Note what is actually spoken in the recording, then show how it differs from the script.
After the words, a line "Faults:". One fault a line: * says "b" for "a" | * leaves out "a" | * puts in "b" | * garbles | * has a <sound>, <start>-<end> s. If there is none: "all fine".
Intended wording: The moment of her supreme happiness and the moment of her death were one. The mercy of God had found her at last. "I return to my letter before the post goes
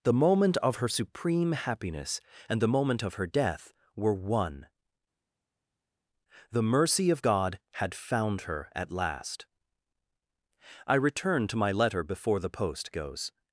The moment of her supreme happiness and the moment of her death were one. The mercy of God had found her at last. "I return to my letter before the post goes
Faults:
all fine